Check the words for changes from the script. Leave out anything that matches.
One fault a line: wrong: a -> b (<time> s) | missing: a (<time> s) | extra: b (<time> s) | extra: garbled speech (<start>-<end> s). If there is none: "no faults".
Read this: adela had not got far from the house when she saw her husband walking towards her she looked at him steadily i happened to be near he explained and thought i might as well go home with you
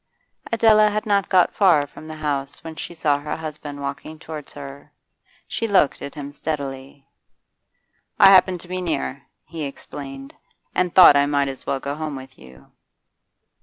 no faults